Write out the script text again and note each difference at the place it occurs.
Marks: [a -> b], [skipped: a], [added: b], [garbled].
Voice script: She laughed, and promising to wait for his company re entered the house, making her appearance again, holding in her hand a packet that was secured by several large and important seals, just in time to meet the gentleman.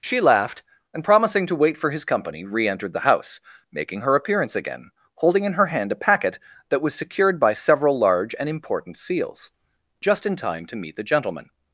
She laughed, and promising to wait for his company re entered the house, making her appearance again, holding in her hand a packet that was secured by several large and important seals, just in time to meet the gentleman.